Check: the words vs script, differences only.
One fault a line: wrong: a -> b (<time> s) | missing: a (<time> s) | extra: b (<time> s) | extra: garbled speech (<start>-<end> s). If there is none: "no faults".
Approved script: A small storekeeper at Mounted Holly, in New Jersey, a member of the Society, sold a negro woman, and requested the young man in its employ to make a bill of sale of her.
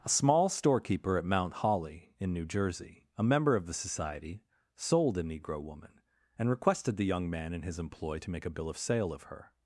wrong: Mounted -> Mount (1.2 s)
wrong: its -> his (7.6 s)